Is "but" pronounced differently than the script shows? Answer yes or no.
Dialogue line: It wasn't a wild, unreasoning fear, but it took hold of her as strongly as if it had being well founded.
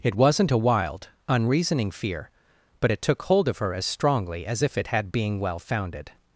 no